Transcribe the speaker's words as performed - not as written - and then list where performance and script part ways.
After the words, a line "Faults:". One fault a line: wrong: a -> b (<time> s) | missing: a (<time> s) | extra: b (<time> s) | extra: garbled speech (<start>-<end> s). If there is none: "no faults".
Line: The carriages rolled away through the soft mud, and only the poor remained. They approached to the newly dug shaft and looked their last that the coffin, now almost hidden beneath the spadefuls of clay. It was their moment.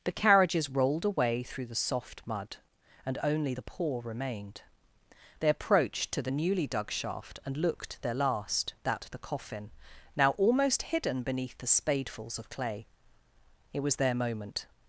The carriages rolled away through the soft mud, and only the poor remained. They approached to the newly dug shaft and looked their last that the coffin, now almost hidden beneath the spadefuls of clay. It was their moment.
Faults:
no faults